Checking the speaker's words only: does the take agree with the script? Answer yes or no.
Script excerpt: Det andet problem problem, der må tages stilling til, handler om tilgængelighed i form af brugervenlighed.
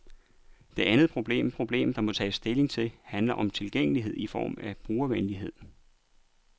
yes